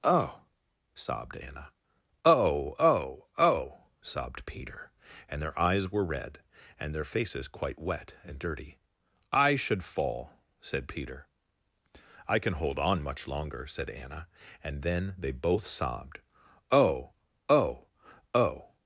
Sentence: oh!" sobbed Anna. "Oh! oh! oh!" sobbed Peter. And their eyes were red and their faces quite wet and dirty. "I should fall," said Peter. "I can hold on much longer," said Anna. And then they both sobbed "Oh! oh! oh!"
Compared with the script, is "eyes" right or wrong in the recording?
right